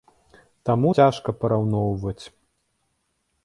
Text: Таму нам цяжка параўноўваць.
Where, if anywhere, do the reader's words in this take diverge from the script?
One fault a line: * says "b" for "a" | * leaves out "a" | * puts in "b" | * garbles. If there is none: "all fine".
* leaves out "нам"